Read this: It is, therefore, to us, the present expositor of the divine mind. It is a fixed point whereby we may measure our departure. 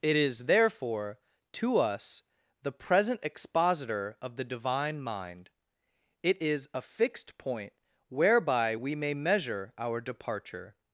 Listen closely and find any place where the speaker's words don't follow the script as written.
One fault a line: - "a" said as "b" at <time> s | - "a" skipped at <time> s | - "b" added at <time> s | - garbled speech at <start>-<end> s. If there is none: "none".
none